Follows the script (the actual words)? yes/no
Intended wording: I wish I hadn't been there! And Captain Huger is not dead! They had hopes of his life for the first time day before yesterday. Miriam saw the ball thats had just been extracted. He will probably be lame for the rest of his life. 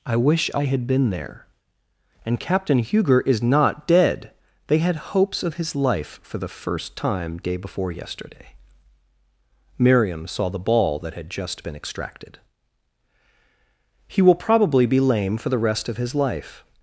no